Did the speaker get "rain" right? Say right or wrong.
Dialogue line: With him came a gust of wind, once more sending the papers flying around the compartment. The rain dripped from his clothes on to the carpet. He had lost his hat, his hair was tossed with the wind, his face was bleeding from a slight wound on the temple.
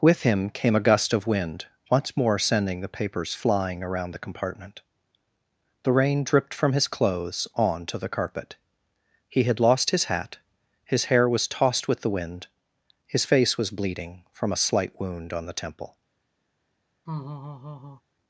right